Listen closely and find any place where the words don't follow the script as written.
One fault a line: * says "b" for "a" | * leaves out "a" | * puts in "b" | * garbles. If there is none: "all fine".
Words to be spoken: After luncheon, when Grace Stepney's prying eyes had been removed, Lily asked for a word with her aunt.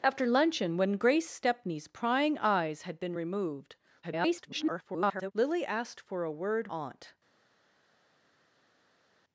* garbles
* leaves out "with her"